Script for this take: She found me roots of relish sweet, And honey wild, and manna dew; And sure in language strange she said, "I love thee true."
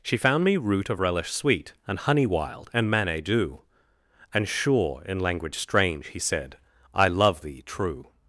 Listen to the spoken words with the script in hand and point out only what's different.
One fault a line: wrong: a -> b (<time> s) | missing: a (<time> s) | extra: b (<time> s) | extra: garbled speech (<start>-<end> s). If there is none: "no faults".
wrong: roots -> root (0.6 s)
wrong: she -> he (6.1 s)